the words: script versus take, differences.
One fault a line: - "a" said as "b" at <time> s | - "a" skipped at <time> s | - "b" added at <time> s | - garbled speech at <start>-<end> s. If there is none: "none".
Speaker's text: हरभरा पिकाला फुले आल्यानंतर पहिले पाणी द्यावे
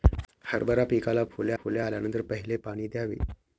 - "फुले" added at 1.6 s